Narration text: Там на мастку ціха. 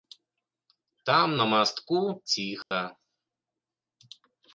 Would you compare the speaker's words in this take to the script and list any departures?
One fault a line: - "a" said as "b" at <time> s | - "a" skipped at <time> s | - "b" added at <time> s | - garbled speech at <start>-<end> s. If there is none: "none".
none